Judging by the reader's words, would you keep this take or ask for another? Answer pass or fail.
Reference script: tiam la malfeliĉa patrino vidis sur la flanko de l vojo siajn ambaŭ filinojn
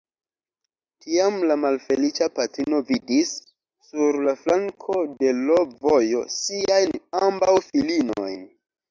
pass